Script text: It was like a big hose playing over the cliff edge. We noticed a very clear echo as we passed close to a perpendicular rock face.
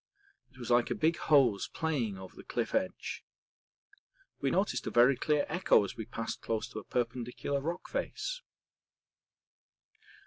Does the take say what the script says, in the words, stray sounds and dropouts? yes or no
yes